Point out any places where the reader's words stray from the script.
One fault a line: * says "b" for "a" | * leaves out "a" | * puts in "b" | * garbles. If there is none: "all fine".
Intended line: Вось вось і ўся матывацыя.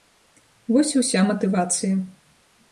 * leaves out "вось"